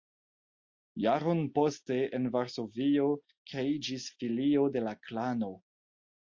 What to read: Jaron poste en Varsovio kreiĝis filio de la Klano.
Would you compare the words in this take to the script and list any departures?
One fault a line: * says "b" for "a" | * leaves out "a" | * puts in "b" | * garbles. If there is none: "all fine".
all fine